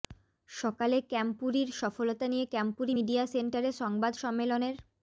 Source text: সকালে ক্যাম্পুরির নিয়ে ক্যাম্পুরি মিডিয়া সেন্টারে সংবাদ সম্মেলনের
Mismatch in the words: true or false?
true